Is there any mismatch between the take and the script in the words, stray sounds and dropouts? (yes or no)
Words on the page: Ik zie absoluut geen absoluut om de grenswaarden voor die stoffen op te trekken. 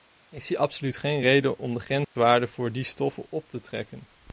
yes